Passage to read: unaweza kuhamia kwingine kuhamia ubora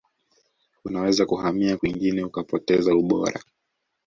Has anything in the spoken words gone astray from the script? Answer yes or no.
yes